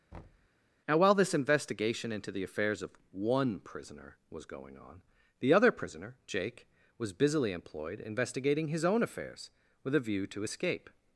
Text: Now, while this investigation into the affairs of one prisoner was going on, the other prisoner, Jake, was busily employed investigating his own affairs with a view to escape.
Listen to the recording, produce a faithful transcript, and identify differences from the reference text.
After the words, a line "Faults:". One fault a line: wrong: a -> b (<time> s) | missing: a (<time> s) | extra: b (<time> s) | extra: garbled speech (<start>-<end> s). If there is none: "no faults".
Now, while this investigation into the affairs of one prisoner was going on, the other prisoner, Jake, was busily employed investigating his own affairs with a view to escape.
Faults:
no faults